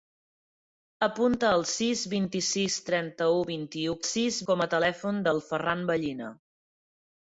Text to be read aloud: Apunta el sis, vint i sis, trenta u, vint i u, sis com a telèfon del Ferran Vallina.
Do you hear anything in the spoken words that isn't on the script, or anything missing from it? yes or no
no